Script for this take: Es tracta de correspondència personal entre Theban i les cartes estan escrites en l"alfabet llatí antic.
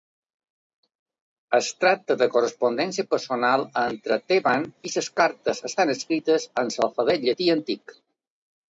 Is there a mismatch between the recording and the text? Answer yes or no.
no